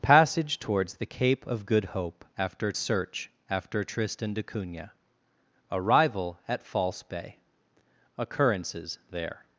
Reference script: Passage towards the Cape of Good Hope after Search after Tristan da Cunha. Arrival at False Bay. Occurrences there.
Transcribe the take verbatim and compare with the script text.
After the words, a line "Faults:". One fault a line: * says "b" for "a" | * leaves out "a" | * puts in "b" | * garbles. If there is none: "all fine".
Passage towards the Cape of Good Hope after Search after Tristan da Cunha. Arrival at False Bay. Occurrences there.
Faults:
all fine